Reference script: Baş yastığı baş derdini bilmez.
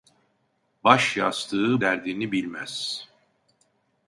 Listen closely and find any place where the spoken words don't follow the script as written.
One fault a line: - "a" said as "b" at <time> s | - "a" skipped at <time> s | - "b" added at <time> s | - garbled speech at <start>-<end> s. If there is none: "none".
- "baş" skipped at 1.8 s